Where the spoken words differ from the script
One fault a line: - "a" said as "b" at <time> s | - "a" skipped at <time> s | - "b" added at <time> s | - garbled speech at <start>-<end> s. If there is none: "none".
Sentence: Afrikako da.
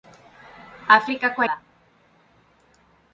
none